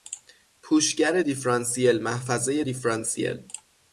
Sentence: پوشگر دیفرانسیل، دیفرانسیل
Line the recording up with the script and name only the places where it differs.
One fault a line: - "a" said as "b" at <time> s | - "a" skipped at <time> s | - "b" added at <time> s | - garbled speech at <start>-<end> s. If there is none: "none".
- "محفظهی" added at 2.0 s